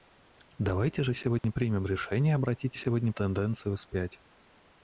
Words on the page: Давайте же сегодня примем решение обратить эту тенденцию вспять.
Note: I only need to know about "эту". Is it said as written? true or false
false